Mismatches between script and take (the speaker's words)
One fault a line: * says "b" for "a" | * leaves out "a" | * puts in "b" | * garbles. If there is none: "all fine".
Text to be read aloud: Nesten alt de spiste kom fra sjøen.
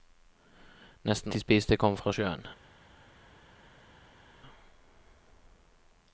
* leaves out "alt"